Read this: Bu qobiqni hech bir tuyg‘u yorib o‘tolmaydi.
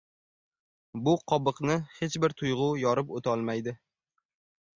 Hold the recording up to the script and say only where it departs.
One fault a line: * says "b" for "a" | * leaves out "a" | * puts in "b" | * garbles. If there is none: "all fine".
all fine